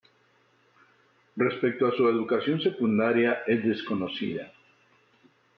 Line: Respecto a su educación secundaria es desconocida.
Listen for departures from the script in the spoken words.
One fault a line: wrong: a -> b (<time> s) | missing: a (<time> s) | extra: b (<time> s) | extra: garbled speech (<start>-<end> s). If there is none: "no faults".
no faults